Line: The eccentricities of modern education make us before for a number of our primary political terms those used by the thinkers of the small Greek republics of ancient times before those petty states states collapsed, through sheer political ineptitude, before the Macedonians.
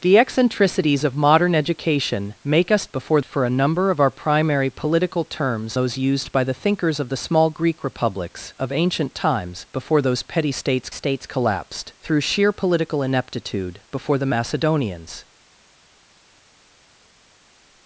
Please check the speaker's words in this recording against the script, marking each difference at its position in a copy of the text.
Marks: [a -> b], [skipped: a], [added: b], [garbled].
The eccentricities of modern education make us before for a number of our primary political terms those used by the thinkers of the small Greek republics of ancient times before those petty states states collapsed, through sheer political ineptitude, before the Macedonians.